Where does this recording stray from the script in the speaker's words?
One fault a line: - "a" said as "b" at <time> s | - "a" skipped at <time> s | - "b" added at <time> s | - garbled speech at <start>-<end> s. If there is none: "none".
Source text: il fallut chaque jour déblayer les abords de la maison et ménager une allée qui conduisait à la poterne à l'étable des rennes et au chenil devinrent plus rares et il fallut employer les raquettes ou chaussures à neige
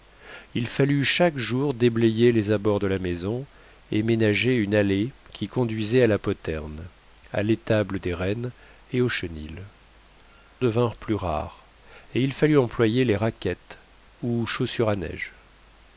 none